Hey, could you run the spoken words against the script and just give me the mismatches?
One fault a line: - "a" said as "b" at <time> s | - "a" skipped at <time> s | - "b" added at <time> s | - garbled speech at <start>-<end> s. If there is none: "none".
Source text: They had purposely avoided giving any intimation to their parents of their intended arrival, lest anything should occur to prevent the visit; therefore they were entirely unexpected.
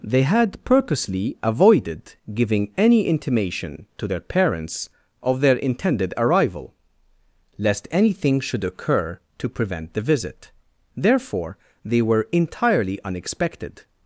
none